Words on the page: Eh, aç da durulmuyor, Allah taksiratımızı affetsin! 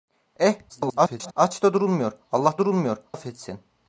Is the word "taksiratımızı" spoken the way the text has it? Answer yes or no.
no